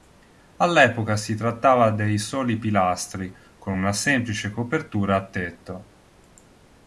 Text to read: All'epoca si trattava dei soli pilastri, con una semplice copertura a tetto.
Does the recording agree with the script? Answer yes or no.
yes